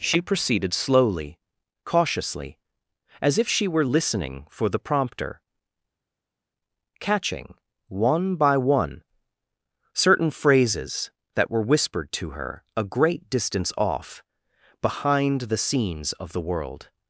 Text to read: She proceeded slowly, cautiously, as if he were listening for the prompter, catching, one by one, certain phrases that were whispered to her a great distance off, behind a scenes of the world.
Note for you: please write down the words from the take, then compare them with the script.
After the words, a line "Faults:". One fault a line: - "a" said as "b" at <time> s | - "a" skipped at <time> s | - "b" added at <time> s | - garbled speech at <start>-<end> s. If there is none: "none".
She proceeded slowly, cautiously, as if she were listening for the prompter, catching, one by one, certain phrases that were whispered to her a great distance off, behind the scenes of the world.
Faults:
- "he" said as "she" at 3.5 s
- "a" said as "the" at 15.4 s